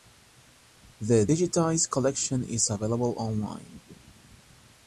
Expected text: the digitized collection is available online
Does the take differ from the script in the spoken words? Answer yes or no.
no